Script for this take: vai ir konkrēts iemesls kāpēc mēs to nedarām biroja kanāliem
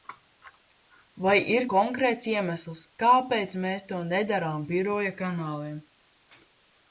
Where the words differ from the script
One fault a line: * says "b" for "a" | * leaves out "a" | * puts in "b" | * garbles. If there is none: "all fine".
all fine